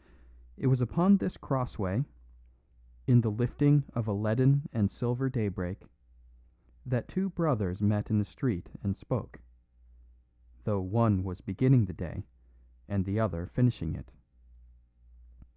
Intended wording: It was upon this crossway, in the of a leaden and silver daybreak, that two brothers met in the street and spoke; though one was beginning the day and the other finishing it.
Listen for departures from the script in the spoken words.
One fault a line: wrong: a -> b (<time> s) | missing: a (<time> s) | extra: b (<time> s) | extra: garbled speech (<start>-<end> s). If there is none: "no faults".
extra: lifting (3.3 s)